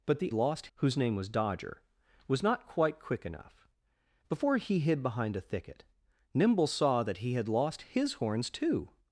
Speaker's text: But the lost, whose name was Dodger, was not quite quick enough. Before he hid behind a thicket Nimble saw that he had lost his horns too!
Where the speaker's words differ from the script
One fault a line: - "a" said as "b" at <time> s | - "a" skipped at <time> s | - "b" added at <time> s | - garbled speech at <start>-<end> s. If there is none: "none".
none